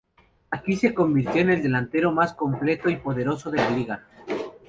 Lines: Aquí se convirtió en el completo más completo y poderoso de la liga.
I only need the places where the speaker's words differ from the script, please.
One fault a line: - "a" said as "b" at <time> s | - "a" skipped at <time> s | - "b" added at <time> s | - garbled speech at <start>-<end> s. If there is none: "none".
- "completo" said as "delantero" at 1.6 s